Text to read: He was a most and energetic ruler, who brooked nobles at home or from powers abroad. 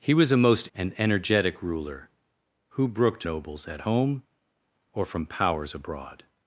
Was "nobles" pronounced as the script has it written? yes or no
yes